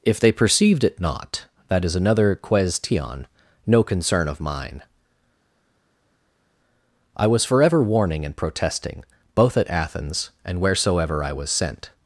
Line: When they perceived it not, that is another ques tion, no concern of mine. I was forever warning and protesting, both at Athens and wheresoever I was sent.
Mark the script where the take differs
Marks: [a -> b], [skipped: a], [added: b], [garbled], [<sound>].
[When -> If] they perceived it not, that is another ques tion, no concern of mine. I was forever warning and protesting, both at Athens and wheresoever I was sent.